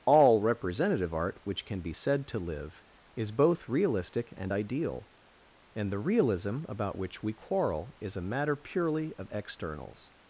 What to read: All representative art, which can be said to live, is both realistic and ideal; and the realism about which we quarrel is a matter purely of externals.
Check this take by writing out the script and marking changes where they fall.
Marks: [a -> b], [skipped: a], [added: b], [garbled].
All representative art, which can be said to live, is both realistic and ideal; and the realism about which we quarrel is a matter purely of externals.